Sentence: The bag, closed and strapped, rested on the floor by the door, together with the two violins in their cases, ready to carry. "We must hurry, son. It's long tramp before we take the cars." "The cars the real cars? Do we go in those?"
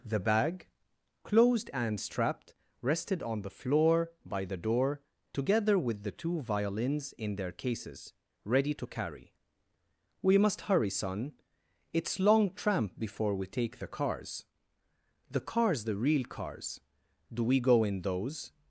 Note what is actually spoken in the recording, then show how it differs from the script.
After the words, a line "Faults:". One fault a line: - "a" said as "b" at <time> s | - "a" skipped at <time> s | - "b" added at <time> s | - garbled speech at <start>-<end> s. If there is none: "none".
The bag, closed and strapped, rested on the floor by the door, together with the two violins in their cases, ready to carry. "We must hurry, son. It's long tramp before we take the cars." "The cars the real cars? Do we go in those?"
Faults:
none